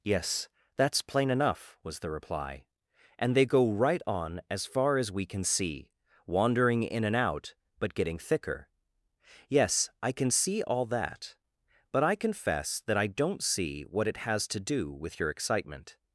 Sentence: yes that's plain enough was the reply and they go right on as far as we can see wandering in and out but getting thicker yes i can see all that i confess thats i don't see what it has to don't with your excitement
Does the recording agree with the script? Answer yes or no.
no